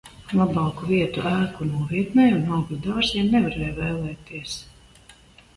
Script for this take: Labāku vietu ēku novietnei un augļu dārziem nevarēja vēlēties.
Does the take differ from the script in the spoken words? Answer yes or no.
no